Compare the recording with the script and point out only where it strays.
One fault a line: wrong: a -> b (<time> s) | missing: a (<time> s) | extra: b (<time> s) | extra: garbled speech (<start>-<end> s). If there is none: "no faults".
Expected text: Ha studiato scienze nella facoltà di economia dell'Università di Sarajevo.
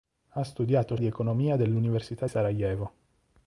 missing: scienze nella facoltà (0.9 s)
missing: di (2.3 s)